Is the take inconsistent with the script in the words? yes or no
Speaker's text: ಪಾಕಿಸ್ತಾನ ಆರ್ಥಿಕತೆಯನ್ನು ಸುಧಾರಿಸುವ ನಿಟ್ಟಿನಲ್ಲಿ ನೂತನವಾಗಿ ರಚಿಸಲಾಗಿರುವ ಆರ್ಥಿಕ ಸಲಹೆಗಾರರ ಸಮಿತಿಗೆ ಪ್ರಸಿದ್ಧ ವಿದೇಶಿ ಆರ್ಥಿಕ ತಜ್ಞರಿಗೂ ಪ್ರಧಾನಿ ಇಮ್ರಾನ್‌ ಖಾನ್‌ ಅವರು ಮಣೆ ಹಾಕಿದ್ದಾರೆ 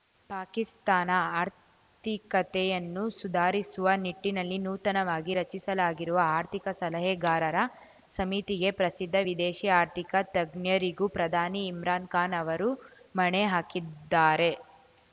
no